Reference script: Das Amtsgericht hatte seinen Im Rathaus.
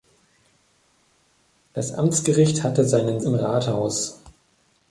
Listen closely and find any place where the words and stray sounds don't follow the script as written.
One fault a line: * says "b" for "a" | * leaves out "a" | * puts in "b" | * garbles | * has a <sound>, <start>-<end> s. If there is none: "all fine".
all fine